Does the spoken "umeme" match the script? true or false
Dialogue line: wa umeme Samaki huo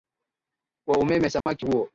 true